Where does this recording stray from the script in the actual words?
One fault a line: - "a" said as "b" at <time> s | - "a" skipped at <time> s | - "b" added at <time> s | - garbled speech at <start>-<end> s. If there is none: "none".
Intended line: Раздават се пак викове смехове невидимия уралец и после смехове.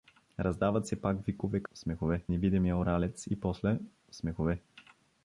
none